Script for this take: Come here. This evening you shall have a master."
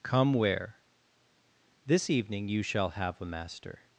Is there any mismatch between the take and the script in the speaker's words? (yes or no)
yes